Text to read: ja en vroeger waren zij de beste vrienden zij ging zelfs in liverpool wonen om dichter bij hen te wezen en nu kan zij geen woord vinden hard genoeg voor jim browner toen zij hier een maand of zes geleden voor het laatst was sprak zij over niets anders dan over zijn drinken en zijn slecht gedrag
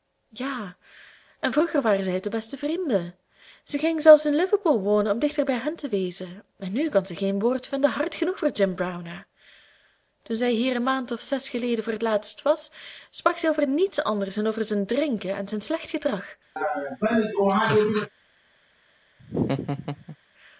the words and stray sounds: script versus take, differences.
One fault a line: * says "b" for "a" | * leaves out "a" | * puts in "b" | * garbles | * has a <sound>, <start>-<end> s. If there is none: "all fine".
* has a laugh, 16.6-18.1 s
* has a laugh, 19.2-20.2 s